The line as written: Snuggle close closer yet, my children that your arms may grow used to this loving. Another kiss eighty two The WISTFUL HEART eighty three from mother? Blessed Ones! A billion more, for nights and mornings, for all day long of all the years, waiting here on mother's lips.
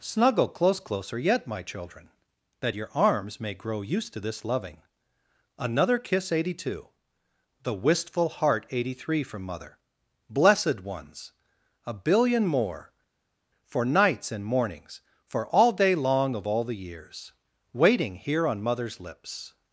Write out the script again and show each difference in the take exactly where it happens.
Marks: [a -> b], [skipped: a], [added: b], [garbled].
Snuggle close closer yet, my children that your arms may grow used to this loving. Another kiss eighty two The WISTFUL HEART eighty three from mother? Blessed Ones! A billion more, for nights and mornings, for all day long of all the years, waiting here on mother's lips.